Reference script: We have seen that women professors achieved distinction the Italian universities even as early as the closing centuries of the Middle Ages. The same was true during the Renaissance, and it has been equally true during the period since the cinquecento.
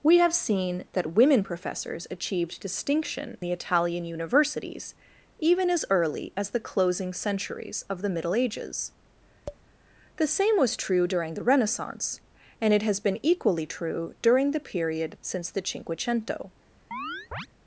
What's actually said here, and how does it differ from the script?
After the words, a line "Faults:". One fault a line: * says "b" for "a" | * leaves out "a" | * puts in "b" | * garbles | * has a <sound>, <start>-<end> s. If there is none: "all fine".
We have seen that women professors achieved distinction the Italian universities even as early as the closing centuries of the Middle Ages. The same was true during the Renaissance, and it has been equally true during the period since the cinquecento.
Faults:
* has a tap, 9.5-9.6 s
* has a chirp, 16.9-17.5 s